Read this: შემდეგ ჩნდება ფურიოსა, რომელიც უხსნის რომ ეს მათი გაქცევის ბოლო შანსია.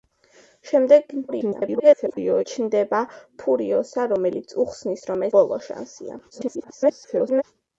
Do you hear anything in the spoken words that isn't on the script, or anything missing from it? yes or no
yes